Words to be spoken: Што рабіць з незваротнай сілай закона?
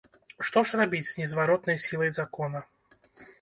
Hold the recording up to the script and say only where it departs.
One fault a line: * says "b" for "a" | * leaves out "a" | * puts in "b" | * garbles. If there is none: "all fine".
* puts in "ж"